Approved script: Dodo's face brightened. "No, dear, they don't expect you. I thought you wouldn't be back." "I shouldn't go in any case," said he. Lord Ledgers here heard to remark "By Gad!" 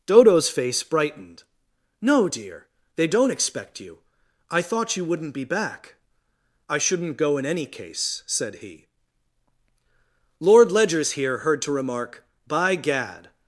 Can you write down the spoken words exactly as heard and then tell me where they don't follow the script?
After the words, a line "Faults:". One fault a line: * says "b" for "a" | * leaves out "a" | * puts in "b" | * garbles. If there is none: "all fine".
Dodo's face brightened. "No, dear, they don't expect you. I thought you wouldn't be back." "I shouldn't go in any case," said he. Lord Ledgers here heard to remark "By Gad!"
Faults:
all fine